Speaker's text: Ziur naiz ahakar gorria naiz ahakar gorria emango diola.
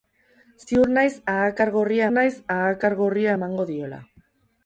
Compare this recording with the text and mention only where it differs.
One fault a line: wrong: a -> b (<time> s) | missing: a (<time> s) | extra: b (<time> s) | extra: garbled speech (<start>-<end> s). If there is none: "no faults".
no faults